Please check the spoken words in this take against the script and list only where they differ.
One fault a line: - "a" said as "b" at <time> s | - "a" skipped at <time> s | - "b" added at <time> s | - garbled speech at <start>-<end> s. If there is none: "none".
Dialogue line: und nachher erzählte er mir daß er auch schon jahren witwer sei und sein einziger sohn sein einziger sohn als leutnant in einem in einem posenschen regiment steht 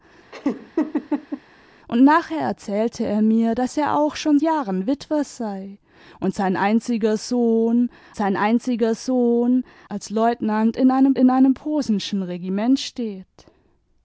none